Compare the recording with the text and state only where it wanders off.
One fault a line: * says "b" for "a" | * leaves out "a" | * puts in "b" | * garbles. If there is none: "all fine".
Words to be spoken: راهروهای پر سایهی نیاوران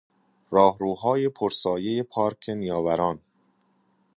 * puts in "پارک"